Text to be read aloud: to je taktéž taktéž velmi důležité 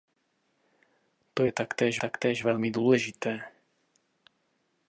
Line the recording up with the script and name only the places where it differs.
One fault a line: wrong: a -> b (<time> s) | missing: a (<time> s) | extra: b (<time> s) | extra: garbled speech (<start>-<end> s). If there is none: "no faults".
no faults